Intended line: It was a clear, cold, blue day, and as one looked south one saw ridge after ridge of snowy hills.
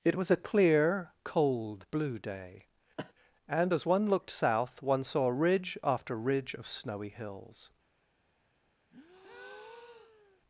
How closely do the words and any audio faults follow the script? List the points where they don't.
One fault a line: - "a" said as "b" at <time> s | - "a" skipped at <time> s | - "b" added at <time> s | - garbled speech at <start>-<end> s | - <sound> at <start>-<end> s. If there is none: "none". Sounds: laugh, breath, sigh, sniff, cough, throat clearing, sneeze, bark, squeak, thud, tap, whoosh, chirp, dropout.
- cough at 3.0-3.1 s
- breath at 8.9-10.4 s